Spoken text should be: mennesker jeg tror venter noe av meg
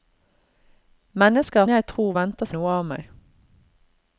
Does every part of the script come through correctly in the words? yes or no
yes